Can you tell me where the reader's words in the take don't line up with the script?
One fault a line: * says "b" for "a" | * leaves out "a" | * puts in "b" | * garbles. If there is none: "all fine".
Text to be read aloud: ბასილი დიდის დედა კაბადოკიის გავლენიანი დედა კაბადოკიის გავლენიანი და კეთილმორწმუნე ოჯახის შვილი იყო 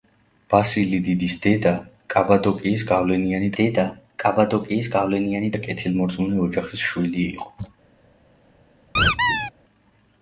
all fine